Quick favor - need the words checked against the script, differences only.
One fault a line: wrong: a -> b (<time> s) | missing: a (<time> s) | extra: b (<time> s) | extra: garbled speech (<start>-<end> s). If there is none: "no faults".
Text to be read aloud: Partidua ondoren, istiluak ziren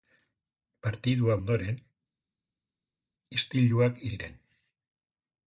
no faults